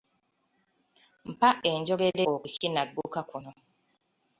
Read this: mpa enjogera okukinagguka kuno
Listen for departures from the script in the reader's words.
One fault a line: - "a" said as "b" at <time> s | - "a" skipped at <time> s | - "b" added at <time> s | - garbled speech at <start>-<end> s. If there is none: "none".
none